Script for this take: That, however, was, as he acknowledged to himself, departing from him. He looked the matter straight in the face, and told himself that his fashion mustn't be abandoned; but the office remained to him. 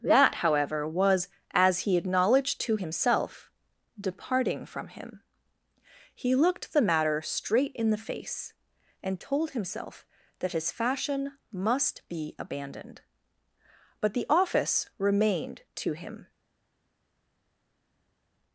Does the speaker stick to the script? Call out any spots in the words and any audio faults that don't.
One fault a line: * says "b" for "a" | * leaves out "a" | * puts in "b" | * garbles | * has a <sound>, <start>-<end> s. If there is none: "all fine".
* says "must" for "mustn't"